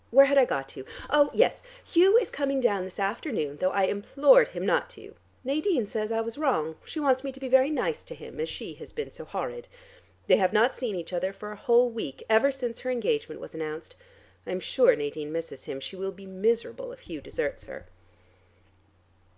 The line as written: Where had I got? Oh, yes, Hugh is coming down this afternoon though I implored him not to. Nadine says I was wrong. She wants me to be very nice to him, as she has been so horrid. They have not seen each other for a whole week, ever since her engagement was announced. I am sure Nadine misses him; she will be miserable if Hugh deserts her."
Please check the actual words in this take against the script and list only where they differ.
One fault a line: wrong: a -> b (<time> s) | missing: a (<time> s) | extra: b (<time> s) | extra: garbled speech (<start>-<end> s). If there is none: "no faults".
extra: to (0.7 s)